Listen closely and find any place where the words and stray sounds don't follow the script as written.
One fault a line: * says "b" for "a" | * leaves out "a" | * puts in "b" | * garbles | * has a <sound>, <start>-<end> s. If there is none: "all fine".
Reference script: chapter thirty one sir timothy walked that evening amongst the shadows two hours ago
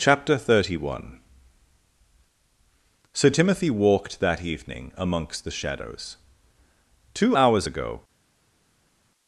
all fine